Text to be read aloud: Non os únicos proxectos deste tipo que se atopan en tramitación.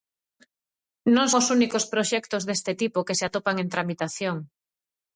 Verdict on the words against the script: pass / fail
pass